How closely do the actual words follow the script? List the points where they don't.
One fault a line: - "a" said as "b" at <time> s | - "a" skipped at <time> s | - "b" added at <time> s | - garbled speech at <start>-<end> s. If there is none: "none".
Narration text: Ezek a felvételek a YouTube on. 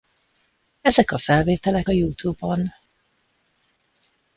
none